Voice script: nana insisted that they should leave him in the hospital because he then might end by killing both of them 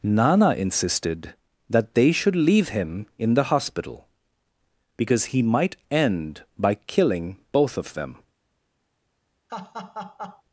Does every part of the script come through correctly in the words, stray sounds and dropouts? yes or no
no